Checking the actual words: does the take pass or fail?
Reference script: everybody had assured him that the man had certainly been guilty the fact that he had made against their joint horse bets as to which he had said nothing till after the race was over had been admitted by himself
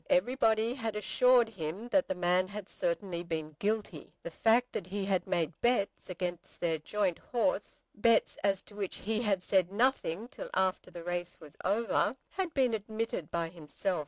fail